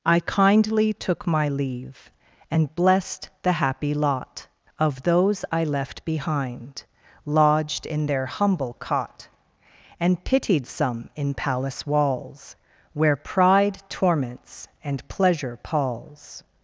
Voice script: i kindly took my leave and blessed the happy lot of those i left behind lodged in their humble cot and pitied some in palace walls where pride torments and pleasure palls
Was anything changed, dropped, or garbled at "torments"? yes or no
no